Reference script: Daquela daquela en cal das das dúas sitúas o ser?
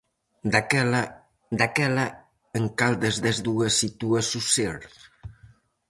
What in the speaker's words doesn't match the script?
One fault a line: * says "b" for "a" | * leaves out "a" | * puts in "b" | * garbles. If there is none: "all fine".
all fine